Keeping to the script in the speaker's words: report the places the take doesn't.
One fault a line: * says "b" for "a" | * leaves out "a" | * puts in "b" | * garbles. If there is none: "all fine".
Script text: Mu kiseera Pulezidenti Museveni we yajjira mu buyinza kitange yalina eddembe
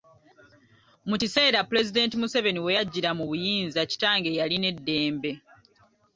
all fine